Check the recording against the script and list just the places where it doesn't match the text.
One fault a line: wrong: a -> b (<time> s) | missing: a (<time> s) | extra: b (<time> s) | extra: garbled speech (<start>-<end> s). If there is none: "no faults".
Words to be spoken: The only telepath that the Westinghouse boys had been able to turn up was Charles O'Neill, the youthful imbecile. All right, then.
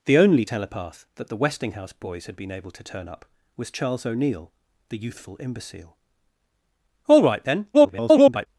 extra: garbled speech (7.7-8.5 s)